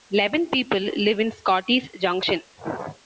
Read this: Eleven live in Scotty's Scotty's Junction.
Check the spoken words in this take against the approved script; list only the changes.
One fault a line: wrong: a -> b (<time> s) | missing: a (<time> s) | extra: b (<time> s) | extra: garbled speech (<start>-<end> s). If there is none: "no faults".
extra: people (0.5 s)
missing: Scotty's (1.9 s)